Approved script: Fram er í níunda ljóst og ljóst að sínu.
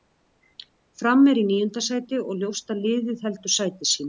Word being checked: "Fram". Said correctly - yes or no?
yes